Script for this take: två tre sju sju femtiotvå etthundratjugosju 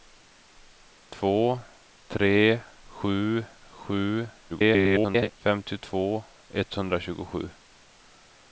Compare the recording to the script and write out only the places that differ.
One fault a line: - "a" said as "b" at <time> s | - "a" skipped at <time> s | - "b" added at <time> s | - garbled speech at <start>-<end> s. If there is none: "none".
- garbled speech at 4.5-5.3 s